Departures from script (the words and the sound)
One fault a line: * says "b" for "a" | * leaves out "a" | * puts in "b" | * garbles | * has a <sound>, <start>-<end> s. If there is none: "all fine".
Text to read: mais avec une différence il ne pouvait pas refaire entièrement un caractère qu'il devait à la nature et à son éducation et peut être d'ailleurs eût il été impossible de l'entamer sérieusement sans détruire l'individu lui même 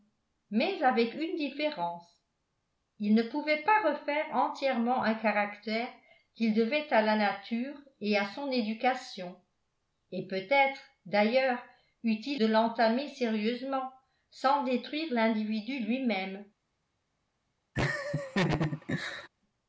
* leaves out "été impossible"
* has a laugh, 17.8-19.3 s